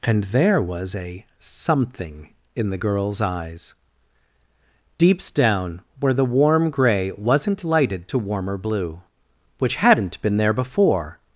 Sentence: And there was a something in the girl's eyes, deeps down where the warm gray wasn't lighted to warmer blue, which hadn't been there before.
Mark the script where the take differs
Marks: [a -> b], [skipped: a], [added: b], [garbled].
And there was a something in the girl's eyes, deeps down where the warm gray wasn't lighted to warmer blue, which hadn't been there before.